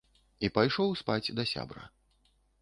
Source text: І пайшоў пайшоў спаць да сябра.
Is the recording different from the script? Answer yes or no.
yes